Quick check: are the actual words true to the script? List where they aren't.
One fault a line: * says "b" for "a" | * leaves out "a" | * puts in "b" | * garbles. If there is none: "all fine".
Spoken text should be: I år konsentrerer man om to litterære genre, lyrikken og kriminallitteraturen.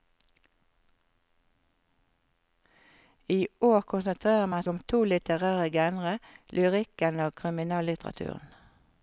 all fine